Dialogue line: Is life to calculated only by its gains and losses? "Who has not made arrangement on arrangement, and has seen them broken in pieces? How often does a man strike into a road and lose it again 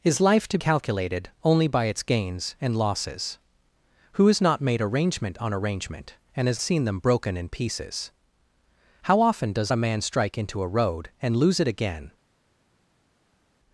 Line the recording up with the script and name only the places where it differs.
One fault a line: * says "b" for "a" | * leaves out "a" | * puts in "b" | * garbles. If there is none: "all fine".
all fine